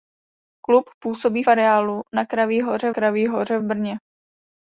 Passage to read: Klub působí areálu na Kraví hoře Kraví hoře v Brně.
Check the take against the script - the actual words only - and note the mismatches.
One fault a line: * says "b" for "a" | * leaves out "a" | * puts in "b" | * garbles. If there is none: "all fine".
all fine